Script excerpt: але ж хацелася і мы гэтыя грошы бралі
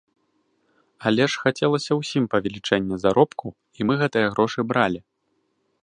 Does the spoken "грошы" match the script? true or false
true